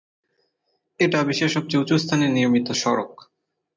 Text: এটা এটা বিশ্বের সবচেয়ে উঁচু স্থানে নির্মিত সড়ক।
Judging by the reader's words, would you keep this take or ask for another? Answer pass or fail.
fail